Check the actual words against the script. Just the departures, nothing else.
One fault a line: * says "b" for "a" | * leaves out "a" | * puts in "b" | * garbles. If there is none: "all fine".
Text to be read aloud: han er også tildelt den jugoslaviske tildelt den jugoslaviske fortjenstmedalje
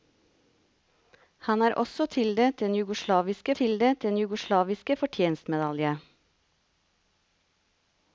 all fine